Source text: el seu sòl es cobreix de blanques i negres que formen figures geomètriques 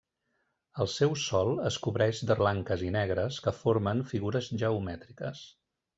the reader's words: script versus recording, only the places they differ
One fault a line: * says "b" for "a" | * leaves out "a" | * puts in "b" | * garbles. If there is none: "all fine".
all fine